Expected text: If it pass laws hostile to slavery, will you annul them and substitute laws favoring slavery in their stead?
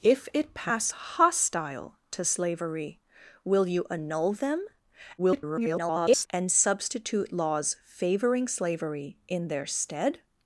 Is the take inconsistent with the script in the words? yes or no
yes